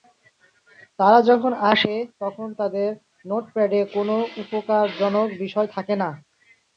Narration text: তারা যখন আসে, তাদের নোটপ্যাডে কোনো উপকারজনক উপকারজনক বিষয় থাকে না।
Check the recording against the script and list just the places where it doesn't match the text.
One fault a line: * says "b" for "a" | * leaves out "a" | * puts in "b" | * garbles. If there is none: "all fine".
* puts in "তখন"
* leaves out "উপকারজনক"